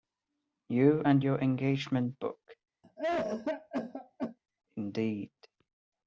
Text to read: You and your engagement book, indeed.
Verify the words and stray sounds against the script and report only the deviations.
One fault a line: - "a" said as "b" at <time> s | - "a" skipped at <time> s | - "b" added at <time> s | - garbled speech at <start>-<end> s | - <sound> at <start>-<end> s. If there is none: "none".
- cough at 2.8-4.4 s